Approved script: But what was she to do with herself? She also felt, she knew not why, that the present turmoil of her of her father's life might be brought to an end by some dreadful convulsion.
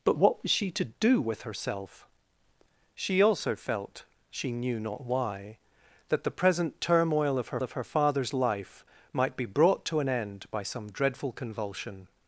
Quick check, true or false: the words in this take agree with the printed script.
true